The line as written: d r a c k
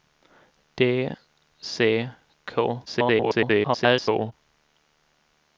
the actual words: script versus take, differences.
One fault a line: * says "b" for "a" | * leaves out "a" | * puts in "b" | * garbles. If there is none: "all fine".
* leaves out "r a"
* garbles